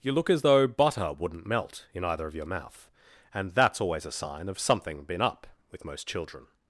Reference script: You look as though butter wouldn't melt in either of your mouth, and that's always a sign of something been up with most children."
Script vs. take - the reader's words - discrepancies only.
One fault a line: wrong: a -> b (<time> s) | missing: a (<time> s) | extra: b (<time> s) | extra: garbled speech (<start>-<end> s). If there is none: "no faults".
no faults